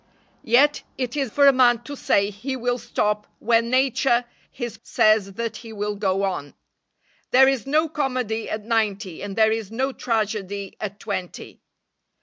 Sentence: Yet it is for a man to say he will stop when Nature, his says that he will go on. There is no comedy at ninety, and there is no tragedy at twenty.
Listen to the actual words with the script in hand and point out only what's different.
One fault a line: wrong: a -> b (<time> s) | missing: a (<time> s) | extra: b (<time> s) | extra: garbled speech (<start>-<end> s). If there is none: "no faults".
no faults